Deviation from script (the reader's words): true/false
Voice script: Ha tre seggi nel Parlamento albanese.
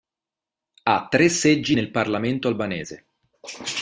false